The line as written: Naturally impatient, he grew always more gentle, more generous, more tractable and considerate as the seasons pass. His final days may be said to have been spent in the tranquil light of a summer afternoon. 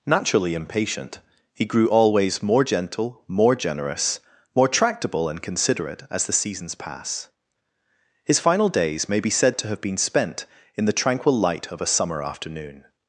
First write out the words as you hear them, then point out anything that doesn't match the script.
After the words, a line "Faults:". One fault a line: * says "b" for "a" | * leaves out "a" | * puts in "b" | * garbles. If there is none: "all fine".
Naturally impatient, he grew always more gentle, more generous, more tractable and considerate as the seasons pass. His final days may be said to have been spent in the tranquil light of a summer afternoon.
Faults:
all fine